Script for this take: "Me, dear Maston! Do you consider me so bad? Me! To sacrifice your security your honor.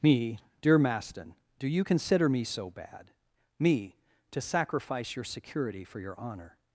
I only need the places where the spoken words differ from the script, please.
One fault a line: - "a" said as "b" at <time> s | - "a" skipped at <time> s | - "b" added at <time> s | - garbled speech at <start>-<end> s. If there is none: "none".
- "for" added at 5.9 s